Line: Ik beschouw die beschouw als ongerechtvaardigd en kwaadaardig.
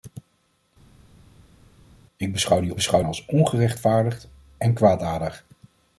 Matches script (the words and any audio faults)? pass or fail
pass